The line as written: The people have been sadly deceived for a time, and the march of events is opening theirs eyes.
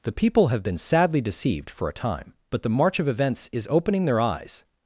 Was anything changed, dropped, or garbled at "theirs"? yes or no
yes